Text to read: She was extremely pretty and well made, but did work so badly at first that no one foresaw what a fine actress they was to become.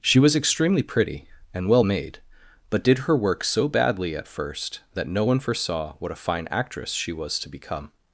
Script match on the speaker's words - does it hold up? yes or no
no